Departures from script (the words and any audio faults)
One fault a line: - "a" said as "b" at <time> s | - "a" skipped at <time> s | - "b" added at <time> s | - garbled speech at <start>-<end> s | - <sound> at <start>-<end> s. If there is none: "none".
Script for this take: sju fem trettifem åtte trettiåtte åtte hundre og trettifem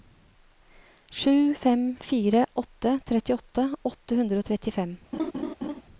- "trettifem" said as "fire" at 2.0 s
- laugh at 5.1-5.8 s